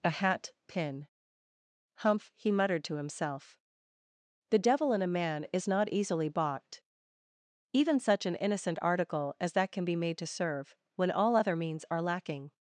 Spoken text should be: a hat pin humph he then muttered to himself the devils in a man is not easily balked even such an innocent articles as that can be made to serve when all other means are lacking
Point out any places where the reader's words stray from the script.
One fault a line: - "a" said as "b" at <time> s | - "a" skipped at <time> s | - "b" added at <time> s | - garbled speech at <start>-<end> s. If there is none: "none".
- "then" skipped at 2.5 s
- "devils" said as "devil" at 4.6 s
- "articles" said as "article" at 8.8 s